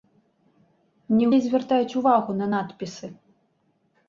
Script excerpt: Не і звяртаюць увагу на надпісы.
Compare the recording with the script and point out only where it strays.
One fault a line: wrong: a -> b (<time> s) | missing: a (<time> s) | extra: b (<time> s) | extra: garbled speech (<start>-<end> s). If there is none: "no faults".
no faults